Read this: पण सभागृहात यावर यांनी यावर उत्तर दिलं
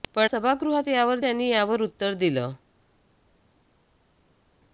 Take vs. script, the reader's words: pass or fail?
pass